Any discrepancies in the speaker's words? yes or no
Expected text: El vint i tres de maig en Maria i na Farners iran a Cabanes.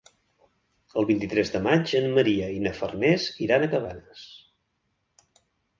no